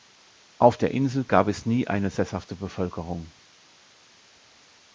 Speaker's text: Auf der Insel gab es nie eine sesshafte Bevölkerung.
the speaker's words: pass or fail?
pass